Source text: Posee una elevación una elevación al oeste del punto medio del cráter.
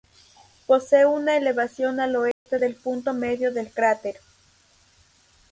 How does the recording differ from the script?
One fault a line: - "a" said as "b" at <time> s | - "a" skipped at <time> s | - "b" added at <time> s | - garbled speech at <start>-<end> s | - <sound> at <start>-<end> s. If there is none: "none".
- "una elevación" skipped at 2.0 s
- dropout at 2.3-2.5 s